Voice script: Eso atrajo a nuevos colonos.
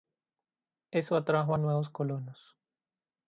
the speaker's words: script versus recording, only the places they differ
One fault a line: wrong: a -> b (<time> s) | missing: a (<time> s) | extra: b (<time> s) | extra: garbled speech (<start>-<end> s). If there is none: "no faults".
no faults